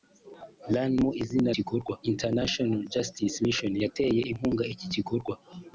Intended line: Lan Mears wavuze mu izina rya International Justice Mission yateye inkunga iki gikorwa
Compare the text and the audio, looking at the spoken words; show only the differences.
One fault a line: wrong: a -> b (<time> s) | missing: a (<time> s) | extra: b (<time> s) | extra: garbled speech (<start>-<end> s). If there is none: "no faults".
missing: Mears wavuze (0.9 s)
wrong: rya -> gikorwa (1.6 s)